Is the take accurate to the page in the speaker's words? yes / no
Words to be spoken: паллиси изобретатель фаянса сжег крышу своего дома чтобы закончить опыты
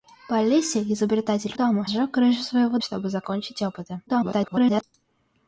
no